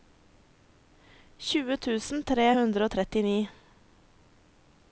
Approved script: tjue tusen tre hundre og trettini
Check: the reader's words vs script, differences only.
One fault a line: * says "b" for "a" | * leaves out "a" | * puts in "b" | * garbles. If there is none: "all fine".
all fine